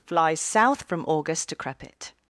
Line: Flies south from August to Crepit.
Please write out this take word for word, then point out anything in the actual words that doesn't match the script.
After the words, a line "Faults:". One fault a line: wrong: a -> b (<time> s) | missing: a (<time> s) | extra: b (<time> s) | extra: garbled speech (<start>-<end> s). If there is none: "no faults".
Flies south from August to Crepit.
Faults:
no faults